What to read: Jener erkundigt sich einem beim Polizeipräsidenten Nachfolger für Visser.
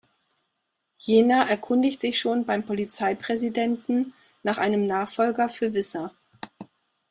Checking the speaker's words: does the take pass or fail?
fail